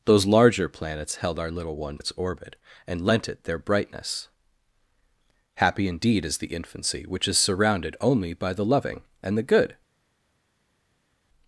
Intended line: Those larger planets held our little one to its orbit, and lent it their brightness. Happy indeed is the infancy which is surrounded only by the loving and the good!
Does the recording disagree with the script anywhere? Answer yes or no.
yes